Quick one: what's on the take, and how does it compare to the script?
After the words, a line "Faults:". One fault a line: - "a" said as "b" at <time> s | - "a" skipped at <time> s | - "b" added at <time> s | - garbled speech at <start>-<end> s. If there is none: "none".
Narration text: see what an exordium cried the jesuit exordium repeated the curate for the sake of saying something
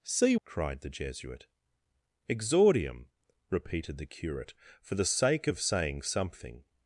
see cried the jesuit exordium repeated the curate for the sake of saying something
Faults:
- "what an exordium" skipped at 0.3 s